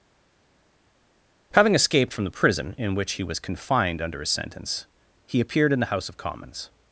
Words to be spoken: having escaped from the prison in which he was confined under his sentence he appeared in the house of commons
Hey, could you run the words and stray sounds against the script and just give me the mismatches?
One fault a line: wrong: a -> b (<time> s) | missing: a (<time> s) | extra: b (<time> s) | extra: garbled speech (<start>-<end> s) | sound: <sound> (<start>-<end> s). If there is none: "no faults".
no faults